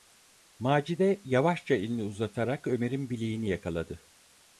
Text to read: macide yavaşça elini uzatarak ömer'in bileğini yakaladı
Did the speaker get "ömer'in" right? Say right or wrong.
right